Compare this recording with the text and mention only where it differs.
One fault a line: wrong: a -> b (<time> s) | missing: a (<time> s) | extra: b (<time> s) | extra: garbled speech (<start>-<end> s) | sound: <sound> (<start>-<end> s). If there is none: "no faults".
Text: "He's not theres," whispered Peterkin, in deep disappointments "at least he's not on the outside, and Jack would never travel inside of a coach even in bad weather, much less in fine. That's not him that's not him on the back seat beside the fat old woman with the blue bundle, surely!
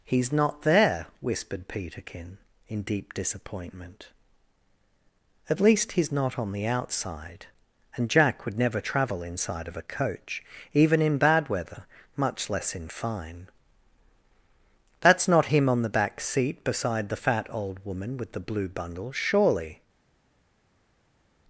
wrong: theres -> there (0.6 s)
wrong: disappointments -> disappointment (3.1 s)
missing: that's not him (15.7 s)